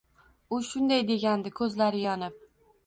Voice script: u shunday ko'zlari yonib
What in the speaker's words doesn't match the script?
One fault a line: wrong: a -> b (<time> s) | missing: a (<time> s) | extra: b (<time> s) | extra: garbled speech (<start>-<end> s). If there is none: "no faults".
extra: degandi (1.1 s)